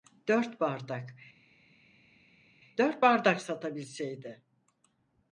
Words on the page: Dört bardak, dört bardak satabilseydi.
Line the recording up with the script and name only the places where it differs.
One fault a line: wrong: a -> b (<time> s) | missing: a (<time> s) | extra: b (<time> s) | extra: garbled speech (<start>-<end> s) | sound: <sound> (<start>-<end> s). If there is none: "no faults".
no faults